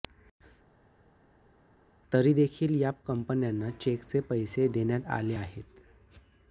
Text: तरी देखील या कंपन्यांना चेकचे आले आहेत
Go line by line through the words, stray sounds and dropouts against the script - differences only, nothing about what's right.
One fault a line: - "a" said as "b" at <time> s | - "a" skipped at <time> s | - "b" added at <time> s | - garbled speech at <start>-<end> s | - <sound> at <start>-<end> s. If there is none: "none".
- "पैसे देण्यात" added at 4.2 s